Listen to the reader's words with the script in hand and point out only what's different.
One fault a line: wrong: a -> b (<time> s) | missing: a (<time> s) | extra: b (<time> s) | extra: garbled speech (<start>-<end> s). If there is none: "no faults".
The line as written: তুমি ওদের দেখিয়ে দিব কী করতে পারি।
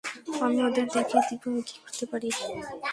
wrong: তুমি -> আমি (0.5 s)
extra: আমি (1.5 s)